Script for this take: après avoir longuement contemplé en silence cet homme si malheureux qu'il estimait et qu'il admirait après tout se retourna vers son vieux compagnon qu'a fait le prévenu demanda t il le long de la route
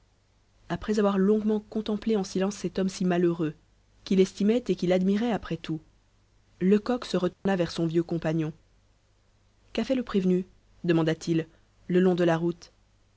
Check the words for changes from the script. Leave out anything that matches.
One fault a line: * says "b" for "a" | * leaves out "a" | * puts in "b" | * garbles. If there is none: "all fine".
* puts in "lecoq"